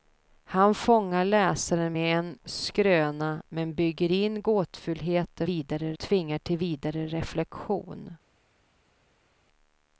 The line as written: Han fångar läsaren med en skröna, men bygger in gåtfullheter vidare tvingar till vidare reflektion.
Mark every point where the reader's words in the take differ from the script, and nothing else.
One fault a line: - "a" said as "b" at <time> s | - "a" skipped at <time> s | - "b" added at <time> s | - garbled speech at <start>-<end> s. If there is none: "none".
none